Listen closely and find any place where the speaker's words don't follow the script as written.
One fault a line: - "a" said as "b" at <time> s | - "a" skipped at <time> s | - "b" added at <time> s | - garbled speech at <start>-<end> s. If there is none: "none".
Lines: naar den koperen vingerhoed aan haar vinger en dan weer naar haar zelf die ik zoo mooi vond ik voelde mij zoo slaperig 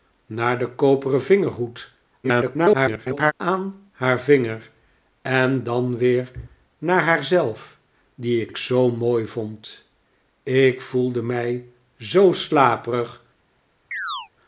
- garbled speech at 2.2-3.3 s
- "ik" added at 8.5 s